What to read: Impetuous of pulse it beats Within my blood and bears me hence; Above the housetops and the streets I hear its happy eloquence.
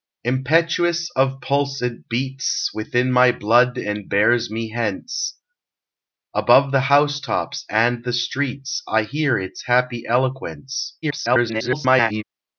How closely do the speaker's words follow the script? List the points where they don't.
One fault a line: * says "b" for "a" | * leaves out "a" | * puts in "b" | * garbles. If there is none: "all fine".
* garbles